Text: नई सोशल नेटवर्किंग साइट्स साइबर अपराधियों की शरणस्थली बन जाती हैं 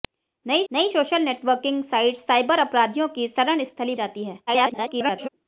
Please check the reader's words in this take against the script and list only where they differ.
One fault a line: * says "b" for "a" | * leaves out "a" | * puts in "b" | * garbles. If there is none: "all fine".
* puts in "नई"
* leaves out "बन"
* garbles